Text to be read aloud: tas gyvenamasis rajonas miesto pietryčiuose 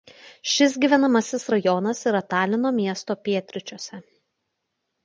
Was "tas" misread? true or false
true